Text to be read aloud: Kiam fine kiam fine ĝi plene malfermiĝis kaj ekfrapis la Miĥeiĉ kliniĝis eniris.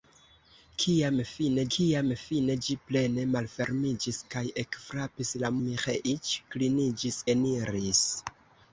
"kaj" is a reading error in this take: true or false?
false